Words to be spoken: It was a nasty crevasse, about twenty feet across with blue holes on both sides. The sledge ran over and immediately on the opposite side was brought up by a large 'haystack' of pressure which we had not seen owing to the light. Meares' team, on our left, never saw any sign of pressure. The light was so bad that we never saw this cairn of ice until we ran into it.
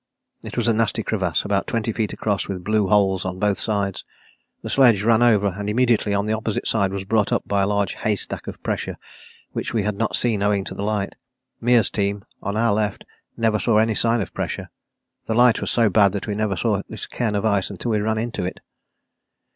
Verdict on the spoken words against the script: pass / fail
pass